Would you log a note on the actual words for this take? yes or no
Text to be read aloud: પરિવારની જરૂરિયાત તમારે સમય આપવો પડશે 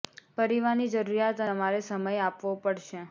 no